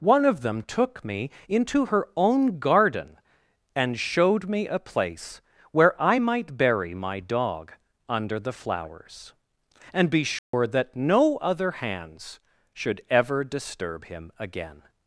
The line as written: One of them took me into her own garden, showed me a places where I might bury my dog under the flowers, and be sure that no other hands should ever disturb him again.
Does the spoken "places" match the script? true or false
false